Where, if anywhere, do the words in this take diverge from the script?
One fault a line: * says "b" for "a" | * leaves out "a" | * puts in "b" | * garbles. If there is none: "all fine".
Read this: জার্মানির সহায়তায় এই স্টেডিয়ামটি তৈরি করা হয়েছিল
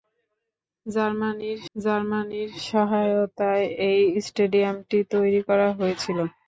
* puts in "জার্মানির"